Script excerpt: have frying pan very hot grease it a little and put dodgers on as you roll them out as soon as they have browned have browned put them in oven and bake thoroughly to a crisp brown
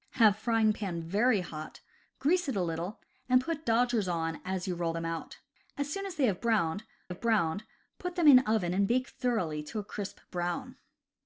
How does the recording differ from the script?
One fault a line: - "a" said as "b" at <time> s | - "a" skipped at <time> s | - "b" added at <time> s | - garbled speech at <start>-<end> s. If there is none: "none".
none